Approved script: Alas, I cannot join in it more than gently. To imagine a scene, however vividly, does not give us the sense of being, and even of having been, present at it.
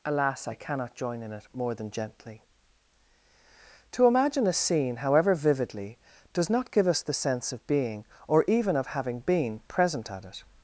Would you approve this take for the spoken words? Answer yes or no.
no